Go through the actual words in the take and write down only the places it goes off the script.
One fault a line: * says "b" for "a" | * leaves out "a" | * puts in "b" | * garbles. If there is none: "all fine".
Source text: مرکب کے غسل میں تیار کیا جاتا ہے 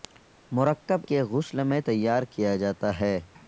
all fine